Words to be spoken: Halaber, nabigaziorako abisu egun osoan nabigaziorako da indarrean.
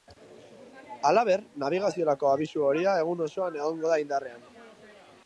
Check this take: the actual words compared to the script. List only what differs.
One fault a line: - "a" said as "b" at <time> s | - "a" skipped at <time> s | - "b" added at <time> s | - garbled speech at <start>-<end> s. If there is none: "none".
- "horia" added at 2.7 s
- "nabigaziorako" said as "egongo" at 3.6 s